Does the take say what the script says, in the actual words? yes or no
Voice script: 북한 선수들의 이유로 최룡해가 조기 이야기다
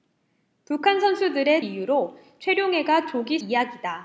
yes